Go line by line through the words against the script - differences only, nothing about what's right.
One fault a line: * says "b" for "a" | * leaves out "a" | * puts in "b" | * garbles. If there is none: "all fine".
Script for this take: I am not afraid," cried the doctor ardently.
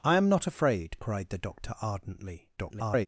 * garbles